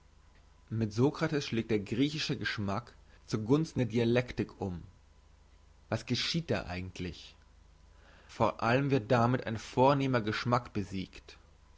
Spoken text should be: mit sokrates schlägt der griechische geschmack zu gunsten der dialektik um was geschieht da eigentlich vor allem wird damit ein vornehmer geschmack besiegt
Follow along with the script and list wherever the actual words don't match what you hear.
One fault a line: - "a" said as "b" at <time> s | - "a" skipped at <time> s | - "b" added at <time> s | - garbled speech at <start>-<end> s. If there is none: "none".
none